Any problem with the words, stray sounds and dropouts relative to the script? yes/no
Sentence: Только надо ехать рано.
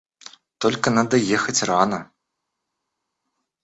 no